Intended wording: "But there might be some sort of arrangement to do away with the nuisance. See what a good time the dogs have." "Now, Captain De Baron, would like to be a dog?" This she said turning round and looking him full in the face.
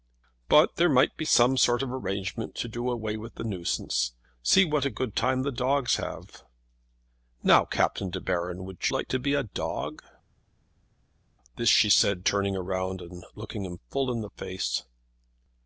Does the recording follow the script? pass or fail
pass